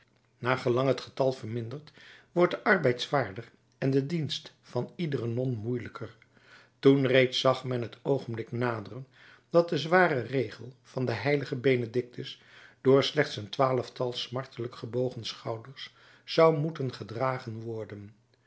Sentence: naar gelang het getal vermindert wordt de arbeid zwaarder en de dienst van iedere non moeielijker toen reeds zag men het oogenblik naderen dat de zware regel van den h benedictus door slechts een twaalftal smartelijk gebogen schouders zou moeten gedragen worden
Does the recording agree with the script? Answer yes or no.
yes